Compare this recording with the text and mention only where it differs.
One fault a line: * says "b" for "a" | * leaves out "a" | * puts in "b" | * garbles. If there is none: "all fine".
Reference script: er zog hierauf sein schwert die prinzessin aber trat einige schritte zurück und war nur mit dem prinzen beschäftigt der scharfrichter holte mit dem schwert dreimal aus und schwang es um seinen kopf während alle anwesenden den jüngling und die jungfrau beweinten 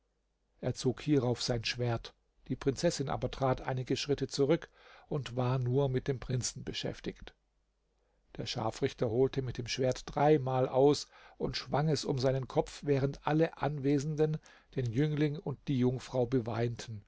all fine